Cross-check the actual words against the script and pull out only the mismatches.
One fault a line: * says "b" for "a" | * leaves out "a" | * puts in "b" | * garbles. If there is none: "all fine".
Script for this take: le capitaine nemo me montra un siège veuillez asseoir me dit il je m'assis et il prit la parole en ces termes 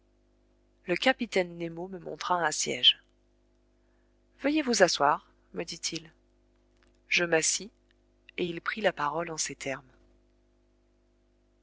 * puts in "vous"